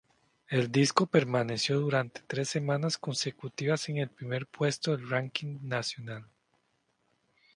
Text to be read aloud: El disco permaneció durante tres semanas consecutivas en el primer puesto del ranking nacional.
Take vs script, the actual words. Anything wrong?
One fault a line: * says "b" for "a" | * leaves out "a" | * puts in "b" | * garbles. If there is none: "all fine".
all fine